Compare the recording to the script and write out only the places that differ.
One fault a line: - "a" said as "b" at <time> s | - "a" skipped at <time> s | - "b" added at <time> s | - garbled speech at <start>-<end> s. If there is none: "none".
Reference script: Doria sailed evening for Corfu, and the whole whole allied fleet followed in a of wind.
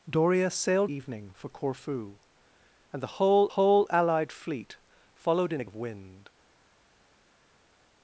none